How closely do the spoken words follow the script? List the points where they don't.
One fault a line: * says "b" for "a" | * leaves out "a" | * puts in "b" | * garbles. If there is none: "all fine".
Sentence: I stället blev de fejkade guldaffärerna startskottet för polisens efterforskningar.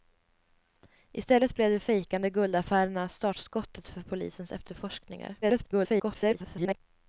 * garbles